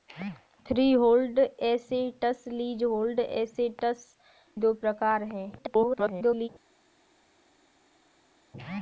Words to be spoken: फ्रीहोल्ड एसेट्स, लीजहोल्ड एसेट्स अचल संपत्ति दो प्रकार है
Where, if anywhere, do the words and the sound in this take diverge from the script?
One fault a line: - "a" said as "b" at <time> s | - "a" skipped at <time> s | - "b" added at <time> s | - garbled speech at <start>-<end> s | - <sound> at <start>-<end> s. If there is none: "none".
- "अचल संपत्ति" skipped at 4.0 s
- garbled speech at 5.6-6.5 s